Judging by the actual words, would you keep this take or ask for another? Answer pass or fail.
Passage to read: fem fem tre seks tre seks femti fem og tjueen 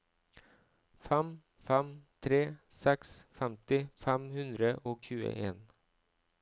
fail